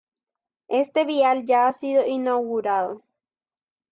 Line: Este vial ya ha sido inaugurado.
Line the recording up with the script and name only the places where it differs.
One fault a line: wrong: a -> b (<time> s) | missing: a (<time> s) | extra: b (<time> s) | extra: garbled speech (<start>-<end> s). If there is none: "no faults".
no faults